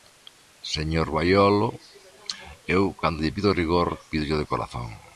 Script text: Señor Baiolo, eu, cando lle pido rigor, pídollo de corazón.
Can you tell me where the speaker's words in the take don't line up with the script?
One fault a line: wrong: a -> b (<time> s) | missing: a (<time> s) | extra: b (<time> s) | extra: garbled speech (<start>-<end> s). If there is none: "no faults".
no faults